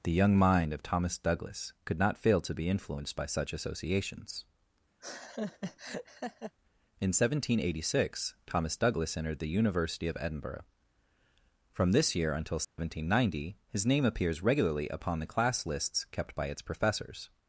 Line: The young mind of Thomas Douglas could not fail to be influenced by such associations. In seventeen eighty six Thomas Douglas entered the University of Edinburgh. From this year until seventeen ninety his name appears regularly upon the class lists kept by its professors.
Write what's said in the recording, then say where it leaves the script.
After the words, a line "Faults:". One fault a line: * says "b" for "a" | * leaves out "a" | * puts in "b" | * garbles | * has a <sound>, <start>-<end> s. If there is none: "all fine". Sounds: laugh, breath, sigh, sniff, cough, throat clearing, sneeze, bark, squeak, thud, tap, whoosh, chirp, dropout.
The young mind of Thomas Douglas could not fail to be influenced by such associations. In seventeen eighty six Thomas Douglas entered the University of Edinburgh. From this year until seventeen ninety his name appears regularly upon the class lists kept by its professors.
Faults:
* has a laugh, 5.0-6.5 s
* has a dropout, 12.6-12.8 s